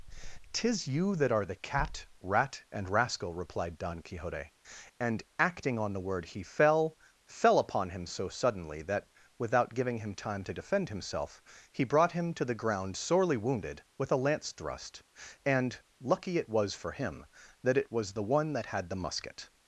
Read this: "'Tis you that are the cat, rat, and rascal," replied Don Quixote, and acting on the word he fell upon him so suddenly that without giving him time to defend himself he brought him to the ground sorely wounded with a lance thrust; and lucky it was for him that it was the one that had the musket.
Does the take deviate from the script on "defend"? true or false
false